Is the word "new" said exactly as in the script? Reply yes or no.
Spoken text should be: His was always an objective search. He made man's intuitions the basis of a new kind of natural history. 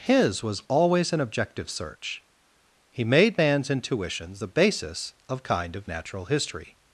no